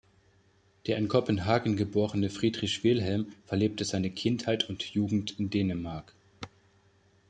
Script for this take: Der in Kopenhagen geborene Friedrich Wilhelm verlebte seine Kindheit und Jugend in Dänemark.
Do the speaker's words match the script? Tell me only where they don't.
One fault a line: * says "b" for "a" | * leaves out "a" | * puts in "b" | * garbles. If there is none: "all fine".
all fine